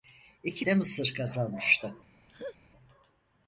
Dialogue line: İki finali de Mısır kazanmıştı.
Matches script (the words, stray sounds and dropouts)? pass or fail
fail